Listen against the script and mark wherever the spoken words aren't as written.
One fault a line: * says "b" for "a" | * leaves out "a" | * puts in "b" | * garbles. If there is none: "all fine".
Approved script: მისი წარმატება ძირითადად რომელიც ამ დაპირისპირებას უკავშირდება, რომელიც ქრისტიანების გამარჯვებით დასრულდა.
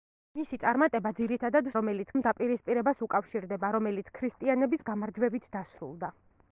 all fine